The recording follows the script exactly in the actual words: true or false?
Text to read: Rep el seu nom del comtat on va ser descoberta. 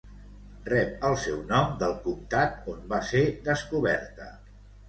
true